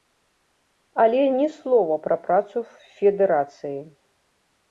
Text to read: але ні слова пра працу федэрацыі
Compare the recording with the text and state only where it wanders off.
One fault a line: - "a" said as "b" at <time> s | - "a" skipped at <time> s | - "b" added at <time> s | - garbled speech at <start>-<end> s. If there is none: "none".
none